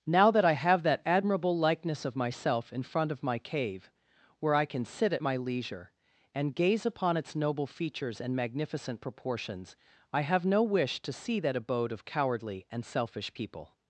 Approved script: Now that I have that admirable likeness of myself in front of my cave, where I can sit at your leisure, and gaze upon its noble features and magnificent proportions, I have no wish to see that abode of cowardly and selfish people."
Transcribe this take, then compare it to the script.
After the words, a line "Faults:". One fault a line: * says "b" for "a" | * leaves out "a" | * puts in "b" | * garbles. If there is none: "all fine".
Now that I have that admirable likeness of myself in front of my cave, where I can sit at my leisure, and gaze upon its noble features and magnificent proportions, I have no wish to see that abode of cowardly and selfish people."
Faults:
* says "my" for "your"